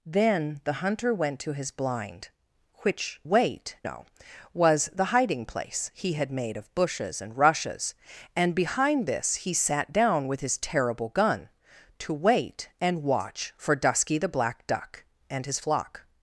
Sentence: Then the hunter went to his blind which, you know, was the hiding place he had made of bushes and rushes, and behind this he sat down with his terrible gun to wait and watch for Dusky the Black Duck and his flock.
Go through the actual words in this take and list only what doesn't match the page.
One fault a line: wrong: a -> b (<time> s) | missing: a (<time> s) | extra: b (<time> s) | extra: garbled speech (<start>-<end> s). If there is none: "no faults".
wrong: you -> wait (3.2 s)